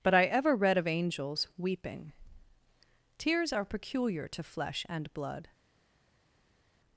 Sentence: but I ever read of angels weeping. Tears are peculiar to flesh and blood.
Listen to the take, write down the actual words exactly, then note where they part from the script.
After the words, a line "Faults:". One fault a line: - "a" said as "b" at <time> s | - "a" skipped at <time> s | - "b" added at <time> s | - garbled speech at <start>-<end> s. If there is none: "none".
but I ever read of angels weeping. Tears are peculiar to flesh and blood.
Faults:
none